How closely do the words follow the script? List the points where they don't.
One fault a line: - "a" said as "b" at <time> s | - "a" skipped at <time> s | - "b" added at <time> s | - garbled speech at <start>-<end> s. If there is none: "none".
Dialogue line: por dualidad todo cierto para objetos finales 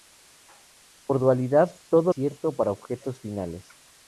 none